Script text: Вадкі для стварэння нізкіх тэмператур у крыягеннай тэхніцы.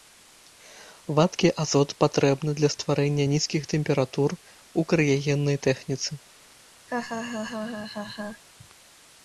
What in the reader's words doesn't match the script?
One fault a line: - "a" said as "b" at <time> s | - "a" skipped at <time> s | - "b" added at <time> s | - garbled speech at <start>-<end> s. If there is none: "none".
- "азот патрэбны" added at 1.6 s